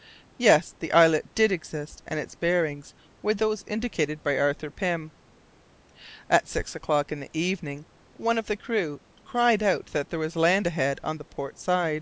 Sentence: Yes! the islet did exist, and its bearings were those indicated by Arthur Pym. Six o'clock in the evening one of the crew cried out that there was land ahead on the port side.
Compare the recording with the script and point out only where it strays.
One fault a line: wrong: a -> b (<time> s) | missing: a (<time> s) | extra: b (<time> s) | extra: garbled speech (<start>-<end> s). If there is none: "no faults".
extra: At (6.3 s)